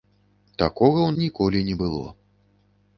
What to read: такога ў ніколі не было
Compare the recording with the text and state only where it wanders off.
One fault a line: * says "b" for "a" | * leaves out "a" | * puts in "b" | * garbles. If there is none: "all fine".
all fine